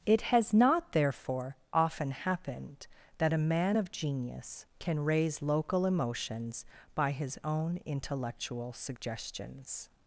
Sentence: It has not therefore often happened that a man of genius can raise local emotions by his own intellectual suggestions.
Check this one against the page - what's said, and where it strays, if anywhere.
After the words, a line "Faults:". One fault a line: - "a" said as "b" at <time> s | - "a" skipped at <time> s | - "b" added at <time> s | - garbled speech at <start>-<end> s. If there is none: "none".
It has not therefore often happened that a man of genius can raise local emotions by his own intellectual suggestions.
Faults:
none